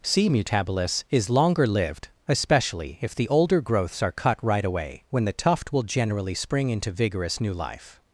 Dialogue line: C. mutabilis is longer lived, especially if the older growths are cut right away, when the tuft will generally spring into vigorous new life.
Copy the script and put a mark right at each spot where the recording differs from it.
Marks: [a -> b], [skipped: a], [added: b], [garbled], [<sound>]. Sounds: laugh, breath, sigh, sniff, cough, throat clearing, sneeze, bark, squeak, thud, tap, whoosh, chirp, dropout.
C. mutabilis is longer lived, especially if the older growths are cut right away, when the tuft will generally spring into vigorous new life.